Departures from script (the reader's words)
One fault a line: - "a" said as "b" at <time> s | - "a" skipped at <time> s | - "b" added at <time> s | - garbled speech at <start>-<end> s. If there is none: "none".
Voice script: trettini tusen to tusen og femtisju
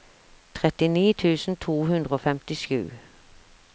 - "tusen" said as "hundre" at 1.9 s